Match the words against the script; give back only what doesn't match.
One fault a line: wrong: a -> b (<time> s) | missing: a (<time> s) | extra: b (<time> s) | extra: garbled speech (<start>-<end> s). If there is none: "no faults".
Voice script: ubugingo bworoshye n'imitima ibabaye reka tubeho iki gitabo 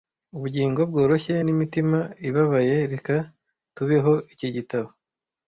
no faults